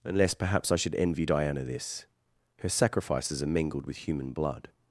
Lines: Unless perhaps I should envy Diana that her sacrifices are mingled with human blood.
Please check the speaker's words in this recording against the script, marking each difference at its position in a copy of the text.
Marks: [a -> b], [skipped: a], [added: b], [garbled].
Unless perhaps I should envy Diana [that -> this] her sacrifices are mingled with human blood.